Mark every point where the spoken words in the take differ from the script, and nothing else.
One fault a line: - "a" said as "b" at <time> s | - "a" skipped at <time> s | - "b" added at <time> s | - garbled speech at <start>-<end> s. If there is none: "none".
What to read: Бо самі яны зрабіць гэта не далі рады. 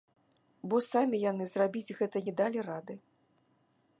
none